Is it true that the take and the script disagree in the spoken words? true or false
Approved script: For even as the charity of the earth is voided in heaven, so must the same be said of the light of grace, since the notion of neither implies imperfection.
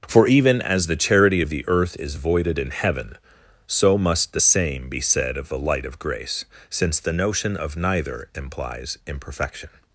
false